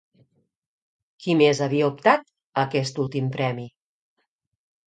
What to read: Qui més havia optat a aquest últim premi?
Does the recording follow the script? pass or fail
pass